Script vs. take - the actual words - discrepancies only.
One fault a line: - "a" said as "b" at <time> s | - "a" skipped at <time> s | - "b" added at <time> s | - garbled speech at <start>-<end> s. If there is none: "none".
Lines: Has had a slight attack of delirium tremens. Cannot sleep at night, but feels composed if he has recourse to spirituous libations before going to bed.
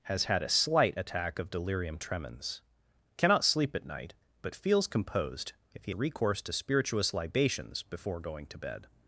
- "has" skipped at 5.9 s